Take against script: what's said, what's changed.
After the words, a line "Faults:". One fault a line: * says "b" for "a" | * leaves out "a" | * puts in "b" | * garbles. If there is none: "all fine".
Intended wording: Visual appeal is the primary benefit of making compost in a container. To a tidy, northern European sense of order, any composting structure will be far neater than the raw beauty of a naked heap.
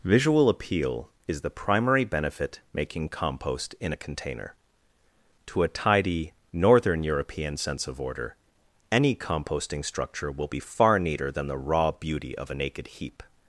Visual appeal is the primary benefit making compost in a container. To a tidy, northern European sense of order, any composting structure will be far neater than the raw beauty of a naked heap.
Faults:
* leaves out "of"